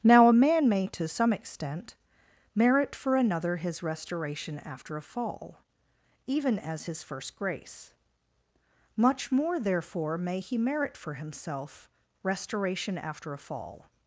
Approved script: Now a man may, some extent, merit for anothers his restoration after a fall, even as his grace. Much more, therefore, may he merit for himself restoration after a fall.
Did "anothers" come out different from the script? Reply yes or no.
yes